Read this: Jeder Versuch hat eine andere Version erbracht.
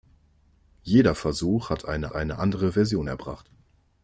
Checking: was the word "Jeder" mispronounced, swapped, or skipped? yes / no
no